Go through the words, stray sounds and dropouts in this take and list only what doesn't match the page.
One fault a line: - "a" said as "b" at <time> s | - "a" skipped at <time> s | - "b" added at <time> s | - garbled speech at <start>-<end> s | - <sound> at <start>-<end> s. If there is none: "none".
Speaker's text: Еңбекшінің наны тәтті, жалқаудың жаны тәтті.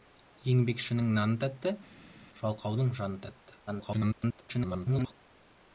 - garbled speech at 3.7-5.1 s